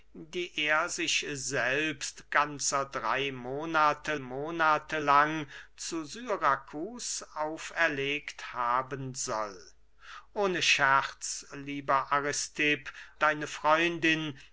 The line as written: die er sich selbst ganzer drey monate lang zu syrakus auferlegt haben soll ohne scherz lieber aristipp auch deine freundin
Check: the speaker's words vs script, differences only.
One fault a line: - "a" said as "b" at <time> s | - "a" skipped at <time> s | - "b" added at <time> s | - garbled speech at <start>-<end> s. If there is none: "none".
- "monate" added at 4.2 s
- "auch" skipped at 12.9 s